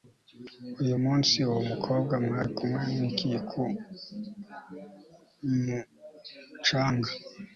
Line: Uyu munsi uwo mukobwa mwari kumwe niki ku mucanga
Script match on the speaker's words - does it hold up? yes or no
yes